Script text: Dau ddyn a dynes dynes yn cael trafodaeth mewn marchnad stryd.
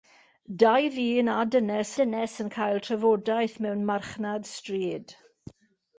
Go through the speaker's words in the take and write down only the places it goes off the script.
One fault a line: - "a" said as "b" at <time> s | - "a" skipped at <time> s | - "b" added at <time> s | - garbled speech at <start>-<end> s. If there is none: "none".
none